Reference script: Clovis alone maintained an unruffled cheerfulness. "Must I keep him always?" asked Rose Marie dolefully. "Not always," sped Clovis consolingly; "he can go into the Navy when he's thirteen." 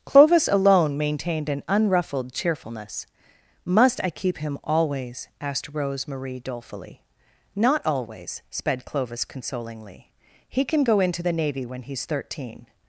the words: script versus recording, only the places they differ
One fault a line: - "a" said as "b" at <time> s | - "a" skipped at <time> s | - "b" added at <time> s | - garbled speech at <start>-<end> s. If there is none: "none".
none